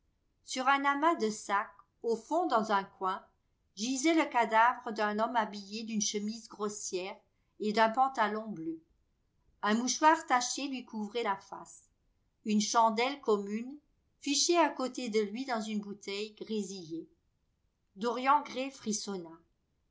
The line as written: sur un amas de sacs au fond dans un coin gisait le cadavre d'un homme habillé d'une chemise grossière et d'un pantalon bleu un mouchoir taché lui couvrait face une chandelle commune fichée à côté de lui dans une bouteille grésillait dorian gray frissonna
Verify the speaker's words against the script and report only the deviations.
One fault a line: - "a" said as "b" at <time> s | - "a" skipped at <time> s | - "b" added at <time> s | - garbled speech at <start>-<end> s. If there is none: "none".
- "la" added at 11.2 s